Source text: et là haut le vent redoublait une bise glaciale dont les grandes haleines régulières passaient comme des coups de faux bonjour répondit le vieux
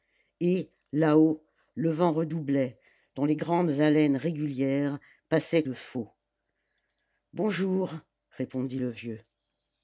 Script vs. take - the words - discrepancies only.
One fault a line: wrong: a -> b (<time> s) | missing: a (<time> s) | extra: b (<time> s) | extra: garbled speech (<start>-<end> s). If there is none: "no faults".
missing: une bise glaciale (2.8 s)
missing: comme des coups (5.6 s)